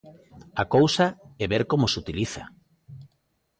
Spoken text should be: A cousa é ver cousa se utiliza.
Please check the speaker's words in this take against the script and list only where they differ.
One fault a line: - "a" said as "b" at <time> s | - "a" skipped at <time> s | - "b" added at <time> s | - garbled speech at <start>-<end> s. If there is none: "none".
- "cousa" said as "como" at 1.7 s